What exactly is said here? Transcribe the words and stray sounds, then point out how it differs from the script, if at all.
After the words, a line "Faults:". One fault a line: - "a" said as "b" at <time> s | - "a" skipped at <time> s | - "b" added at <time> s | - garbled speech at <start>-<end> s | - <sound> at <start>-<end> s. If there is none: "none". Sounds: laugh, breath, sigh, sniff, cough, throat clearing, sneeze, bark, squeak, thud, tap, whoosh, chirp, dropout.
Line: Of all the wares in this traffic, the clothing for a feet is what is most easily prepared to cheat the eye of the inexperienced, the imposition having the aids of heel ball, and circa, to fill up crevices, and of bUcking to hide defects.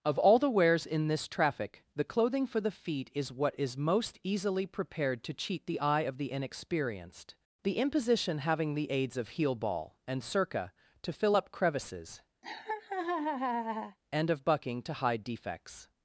Of all the wares in this traffic, the clothing for the feet is what is most easily prepared to cheat the eye of the inexperienced, the imposition having the aids of heel ball, and circa, to fill up crevices, and of bUcking to hide defects.
Faults:
- "a" said as "the" at 2.6 s
- laugh at 12.4-14.0 s